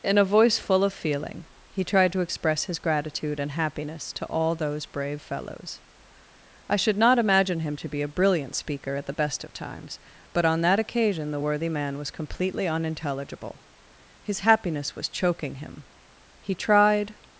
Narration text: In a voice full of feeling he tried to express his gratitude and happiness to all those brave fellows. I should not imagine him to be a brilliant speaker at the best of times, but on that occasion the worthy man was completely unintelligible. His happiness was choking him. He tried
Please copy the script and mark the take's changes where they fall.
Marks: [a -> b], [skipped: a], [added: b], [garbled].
In a voice full of feeling he tried to express his gratitude and happiness to all those brave fellows. I should not imagine him to be a brilliant speaker at the best of times, but on that occasion the worthy man was completely unintelligible. His happiness was choking him. He tried